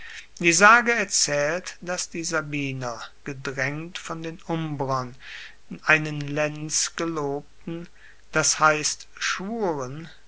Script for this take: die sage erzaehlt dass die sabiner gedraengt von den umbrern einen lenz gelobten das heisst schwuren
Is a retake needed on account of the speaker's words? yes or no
no